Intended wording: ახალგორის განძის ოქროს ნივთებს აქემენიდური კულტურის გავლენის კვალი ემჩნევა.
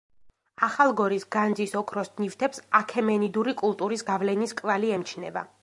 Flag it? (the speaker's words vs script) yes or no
no